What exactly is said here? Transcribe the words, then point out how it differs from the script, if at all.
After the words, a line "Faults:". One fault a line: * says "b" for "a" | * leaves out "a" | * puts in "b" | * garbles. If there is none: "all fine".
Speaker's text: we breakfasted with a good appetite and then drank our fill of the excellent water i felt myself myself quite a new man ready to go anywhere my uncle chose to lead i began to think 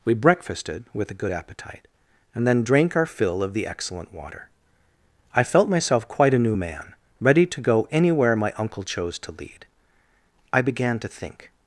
we breakfasted with a good appetite and then drank our fill of the excellent water i felt myself quite a new man ready to go anywhere my uncle chose to lead i began to think
Faults:
* leaves out "myself"